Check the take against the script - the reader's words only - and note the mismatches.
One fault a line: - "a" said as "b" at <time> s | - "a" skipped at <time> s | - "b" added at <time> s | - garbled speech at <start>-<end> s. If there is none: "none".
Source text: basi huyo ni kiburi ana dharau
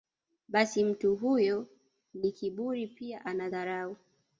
- "mtu" added at 0.8 s
- "pia" added at 2.9 s